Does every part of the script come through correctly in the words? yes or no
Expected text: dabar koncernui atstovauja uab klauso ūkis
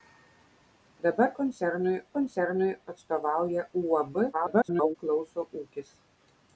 no